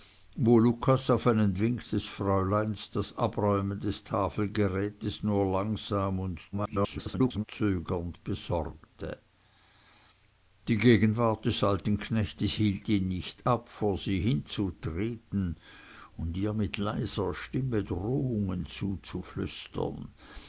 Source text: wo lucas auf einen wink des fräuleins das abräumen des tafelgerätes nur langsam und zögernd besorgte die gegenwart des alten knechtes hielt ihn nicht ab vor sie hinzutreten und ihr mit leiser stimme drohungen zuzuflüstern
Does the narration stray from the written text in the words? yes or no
yes